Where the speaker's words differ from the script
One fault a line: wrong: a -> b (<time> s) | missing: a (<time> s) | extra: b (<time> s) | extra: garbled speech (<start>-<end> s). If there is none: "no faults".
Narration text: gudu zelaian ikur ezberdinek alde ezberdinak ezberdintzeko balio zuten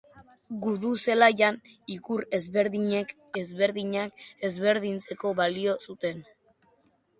missing: alde (3.1 s)